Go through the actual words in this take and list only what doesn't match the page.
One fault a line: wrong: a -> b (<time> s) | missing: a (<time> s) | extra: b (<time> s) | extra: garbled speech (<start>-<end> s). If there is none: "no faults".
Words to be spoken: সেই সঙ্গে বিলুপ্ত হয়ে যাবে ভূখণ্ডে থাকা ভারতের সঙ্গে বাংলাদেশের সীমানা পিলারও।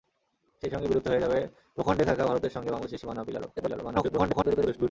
extra: garbled speech (3.6-4.9 s)